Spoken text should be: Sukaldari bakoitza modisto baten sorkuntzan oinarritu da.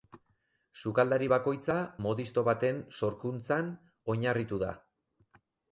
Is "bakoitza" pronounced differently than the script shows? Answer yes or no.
no